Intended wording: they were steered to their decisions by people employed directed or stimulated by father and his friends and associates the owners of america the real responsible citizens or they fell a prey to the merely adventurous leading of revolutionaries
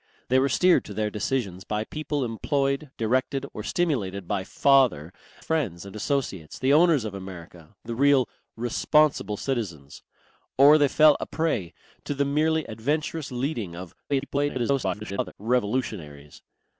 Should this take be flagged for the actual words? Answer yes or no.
yes